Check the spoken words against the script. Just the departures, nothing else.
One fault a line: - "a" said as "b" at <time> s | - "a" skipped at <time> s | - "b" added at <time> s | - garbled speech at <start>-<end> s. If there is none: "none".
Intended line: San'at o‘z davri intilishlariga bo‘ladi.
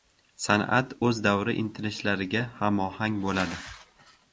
- "hamohang" added at 2.6 s